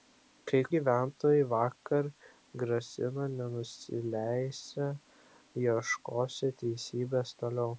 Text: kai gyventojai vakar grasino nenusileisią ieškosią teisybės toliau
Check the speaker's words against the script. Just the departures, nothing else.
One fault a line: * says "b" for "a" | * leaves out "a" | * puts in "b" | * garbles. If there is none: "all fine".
all fine